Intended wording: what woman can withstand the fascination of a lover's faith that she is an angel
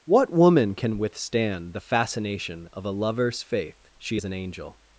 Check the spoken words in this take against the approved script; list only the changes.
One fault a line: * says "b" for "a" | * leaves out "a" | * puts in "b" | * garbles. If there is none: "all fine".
* leaves out "that"